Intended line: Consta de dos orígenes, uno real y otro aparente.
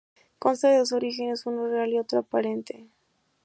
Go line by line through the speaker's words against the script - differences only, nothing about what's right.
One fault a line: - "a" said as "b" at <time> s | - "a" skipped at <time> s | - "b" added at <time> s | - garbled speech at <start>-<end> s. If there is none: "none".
none